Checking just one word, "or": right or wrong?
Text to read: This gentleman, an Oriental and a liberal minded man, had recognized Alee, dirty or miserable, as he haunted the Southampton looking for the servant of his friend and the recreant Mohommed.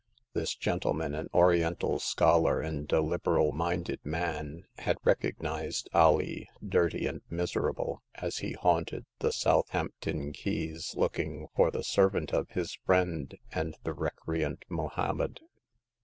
wrong